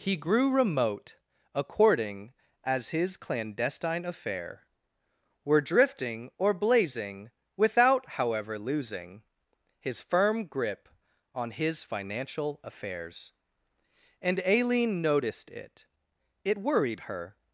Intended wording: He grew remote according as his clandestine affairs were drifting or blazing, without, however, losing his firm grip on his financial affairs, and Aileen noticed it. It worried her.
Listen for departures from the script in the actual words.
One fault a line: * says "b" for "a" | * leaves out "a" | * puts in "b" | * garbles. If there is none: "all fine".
* says "affair" for "affairs"